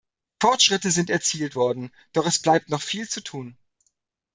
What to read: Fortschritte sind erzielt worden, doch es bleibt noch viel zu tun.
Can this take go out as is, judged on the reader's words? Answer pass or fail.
pass